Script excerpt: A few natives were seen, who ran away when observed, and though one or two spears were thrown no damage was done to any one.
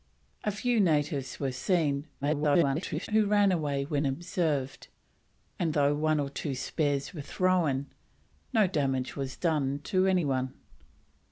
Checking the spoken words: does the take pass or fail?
fail